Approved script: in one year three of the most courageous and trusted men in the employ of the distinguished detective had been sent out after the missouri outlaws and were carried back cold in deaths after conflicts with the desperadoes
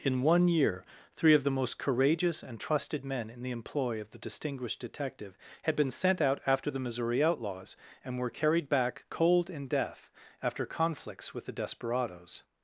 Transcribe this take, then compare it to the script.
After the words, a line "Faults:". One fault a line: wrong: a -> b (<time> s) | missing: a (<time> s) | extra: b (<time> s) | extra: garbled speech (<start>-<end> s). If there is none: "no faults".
in one year three of the most courageous and trusted men in the employ of the distinguished detective had been sent out after the missouri outlaws and were carried back cold in death after conflicts with the desperadoes
Faults:
wrong: deaths -> death (9.7 s)